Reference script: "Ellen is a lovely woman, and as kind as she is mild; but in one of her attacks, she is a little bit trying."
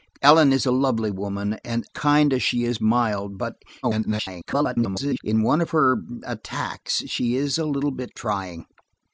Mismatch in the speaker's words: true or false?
true